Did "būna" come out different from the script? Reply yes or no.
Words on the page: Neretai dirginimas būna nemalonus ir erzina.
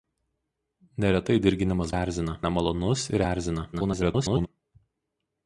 yes